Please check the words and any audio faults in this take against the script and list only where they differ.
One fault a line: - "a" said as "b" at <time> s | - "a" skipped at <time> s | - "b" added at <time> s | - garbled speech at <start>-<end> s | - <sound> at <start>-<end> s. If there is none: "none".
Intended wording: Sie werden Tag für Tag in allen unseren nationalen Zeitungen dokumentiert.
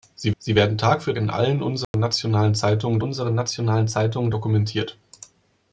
- "sie" added at 0.4 s
- "Tag" skipped at 1.1 s
- dropout at 1.8-1.9 s
- "unseren nationalen Zeitungen" added at 3.0 s